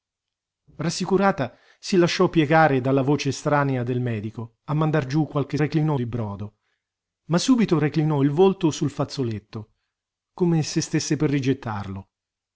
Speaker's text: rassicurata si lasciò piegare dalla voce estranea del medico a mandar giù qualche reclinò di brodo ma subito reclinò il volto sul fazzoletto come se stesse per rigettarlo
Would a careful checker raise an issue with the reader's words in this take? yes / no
no